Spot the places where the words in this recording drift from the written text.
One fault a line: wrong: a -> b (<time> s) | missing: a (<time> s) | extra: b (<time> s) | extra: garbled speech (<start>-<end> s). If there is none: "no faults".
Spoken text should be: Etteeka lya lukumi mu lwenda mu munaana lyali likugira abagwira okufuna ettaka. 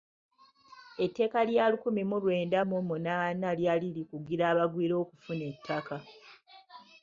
no faults